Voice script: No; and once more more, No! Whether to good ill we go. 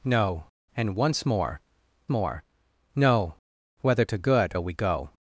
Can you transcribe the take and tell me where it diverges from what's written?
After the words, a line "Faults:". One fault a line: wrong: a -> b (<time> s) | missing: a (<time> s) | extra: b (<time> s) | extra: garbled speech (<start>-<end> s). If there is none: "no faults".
No; and once more more, No! Whether to good ill we go.
Faults:
no faults